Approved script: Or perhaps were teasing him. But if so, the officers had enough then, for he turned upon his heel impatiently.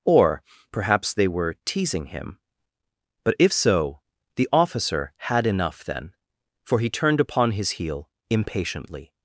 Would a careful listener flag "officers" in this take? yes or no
yes